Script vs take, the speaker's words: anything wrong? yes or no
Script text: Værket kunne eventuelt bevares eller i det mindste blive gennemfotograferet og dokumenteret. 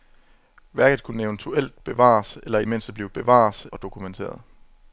yes